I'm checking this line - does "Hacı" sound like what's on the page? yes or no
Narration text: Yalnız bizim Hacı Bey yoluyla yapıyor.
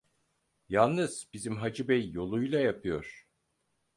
yes